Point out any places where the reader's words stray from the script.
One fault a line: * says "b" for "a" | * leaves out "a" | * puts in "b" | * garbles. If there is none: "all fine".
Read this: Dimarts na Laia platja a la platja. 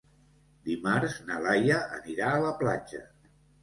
* says "anirà" for "platja"